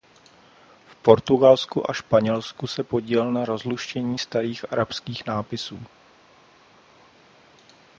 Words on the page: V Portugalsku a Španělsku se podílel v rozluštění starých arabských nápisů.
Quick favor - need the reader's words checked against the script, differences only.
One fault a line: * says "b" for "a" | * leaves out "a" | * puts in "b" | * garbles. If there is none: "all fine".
* says "na" for "v"